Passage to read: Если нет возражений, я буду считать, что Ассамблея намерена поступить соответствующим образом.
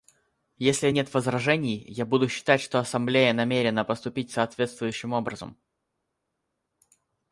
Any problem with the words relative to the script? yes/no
no